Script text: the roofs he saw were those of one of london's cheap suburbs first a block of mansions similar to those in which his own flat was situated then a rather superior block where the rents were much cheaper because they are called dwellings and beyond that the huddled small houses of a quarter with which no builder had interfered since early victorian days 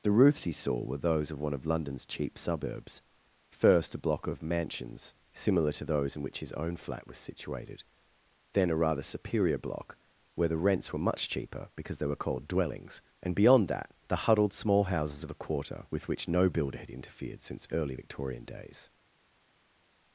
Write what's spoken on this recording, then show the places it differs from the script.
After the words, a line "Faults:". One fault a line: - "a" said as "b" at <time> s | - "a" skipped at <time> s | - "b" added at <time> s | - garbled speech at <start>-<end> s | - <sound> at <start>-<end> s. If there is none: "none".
the roofs he saw were those of one of london's cheap suburbs first a block of mansions similar to those in which his own flat was situated then a rather superior block where the rents were much cheaper because they were called dwellings and beyond that the huddled small houses of a quarter with which no builder had interfered since early victorian days
Faults:
- "are" said as "were" at 12.1 s